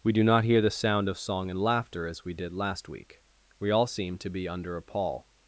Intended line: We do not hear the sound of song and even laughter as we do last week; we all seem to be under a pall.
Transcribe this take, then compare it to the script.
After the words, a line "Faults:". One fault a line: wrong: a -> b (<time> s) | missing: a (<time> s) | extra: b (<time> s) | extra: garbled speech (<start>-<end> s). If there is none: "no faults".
We do not hear the sound of song and laughter as we did last week; we all seem to be under a pall.
Faults:
missing: even (1.6 s)
wrong: do -> did (2.3 s)